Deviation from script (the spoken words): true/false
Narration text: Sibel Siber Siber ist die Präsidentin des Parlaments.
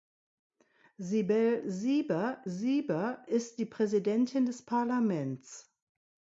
false